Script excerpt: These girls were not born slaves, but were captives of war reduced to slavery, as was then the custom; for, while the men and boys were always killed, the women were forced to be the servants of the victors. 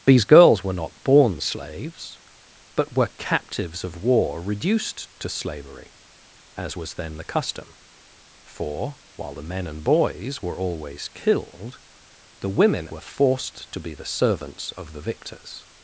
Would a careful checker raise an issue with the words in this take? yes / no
no